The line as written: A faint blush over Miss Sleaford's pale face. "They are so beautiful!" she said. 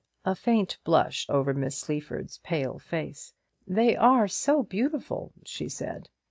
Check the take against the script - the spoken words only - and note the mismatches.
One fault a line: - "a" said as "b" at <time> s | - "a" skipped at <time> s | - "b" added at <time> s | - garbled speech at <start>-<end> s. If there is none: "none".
none